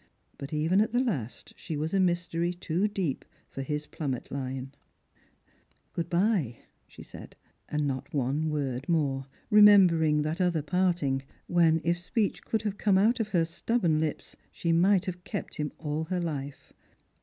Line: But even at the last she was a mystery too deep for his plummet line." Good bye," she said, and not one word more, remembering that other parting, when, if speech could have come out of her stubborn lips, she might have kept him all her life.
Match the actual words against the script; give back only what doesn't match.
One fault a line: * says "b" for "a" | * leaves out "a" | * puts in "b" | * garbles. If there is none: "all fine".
all fine